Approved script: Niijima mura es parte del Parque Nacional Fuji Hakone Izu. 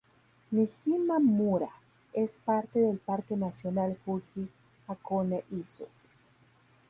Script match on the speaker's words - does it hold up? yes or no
yes